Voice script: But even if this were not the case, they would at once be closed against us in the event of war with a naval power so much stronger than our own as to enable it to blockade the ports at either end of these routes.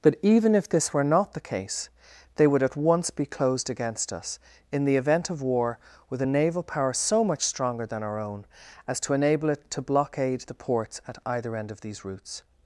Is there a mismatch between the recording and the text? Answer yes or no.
no